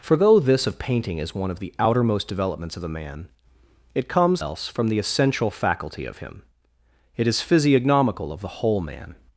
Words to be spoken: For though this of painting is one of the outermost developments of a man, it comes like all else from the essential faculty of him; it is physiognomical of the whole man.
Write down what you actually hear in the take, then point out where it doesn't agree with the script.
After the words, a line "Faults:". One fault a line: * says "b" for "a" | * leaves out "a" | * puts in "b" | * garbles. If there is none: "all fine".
For though this of painting is one of the outermost developments of a man, it comes else from the essential faculty of him; it is physiognomical of the whole man.
Faults:
* leaves out "like all"